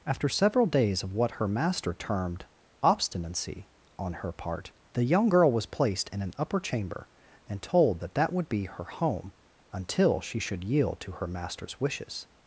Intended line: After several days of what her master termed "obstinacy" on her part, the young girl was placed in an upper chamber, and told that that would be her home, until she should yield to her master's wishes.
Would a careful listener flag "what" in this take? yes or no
no